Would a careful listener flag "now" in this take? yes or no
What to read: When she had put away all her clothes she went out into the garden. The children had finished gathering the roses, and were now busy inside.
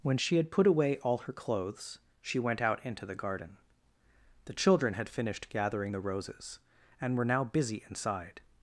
no